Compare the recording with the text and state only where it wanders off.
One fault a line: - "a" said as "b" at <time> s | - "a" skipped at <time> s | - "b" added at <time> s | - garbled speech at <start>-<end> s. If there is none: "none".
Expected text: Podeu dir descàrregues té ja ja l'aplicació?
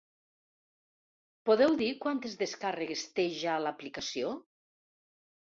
- "quantes" added at 2.0 s
- "ja" skipped at 3.6 s